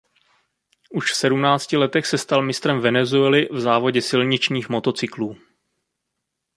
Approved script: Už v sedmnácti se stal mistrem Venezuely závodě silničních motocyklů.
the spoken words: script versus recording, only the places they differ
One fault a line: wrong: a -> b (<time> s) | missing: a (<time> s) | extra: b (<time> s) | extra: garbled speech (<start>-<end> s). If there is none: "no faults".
extra: letech (1.8 s)
extra: v (3.5 s)